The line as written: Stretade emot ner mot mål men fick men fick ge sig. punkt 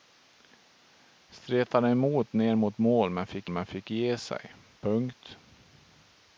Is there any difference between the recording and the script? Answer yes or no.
no